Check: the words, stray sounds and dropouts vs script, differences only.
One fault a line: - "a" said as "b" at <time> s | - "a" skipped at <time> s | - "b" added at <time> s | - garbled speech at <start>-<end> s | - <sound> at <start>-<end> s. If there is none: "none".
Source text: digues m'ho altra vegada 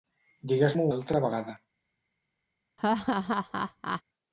- laugh at 2.8-4.0 s